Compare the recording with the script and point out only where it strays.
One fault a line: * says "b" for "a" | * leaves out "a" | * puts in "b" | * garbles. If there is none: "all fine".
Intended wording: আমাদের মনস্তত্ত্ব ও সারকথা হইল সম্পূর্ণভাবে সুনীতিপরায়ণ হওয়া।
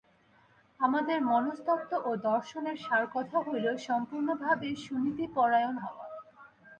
* puts in "দর্শনের"